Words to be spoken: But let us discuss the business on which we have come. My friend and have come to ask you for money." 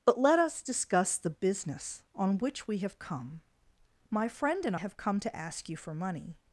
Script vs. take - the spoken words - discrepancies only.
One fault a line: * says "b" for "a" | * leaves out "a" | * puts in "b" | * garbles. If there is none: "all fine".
all fine